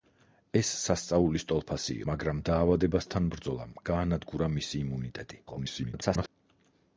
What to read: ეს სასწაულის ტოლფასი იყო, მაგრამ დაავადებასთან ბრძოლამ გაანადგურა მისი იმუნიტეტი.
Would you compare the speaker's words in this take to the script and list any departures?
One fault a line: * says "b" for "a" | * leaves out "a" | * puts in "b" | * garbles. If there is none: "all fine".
* leaves out "იყო"
* garbles